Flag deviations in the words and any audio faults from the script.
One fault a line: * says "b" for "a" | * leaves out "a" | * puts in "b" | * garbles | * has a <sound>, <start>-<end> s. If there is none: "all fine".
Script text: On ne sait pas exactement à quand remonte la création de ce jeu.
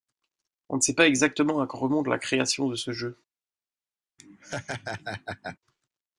* has a laugh, 4.2-5.6 s